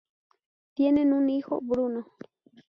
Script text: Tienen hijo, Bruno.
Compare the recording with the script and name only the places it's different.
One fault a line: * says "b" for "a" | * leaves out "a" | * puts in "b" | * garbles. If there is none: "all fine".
* puts in "un"